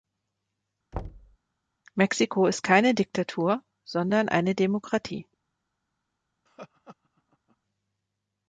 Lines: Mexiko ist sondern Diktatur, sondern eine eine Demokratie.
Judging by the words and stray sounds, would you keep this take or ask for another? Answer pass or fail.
fail